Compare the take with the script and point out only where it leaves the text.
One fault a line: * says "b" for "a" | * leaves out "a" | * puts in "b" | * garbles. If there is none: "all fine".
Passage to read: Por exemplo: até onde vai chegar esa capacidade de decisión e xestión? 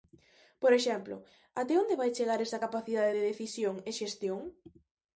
all fine